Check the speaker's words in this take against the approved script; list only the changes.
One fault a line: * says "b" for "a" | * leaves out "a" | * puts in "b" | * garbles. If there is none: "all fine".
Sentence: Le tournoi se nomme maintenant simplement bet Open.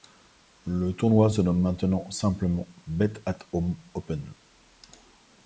* puts in "at home"